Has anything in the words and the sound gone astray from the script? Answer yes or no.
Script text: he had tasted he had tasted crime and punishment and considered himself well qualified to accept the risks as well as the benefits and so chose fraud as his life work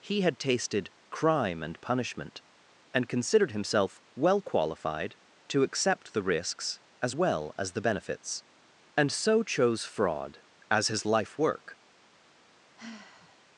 yes